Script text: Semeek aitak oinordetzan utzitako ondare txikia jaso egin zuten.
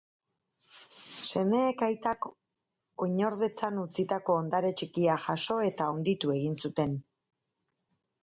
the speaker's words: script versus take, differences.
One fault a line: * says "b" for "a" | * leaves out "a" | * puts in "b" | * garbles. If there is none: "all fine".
* puts in "eta handitu"